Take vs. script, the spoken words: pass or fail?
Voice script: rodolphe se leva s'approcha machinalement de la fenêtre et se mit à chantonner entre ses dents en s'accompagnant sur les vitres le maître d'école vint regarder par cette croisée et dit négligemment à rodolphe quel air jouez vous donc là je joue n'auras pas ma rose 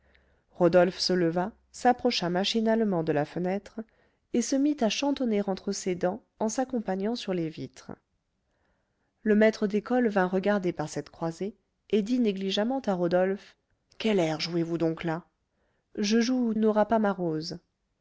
pass